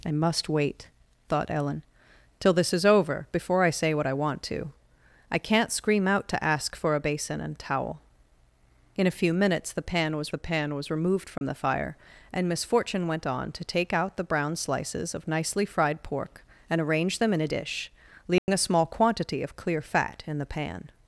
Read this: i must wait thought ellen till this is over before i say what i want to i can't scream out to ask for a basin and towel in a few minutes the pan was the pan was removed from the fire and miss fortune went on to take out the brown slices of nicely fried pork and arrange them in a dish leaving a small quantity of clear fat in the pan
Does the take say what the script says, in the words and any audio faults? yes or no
no